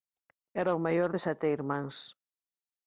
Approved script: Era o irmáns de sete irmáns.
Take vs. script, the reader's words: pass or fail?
fail